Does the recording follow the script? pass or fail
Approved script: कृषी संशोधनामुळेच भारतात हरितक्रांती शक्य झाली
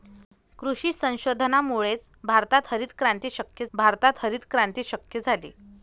fail